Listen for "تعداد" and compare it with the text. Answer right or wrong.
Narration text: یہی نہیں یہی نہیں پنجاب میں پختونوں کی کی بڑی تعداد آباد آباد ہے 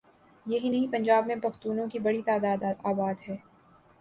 right